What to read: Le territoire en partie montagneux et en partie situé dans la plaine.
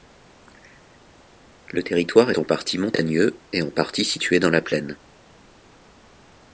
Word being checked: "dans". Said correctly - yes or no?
yes